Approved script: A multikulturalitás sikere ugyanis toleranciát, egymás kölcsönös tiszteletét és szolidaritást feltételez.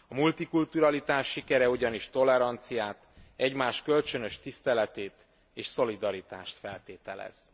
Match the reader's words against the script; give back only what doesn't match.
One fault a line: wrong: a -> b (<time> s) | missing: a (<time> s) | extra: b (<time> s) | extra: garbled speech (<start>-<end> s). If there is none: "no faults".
no faults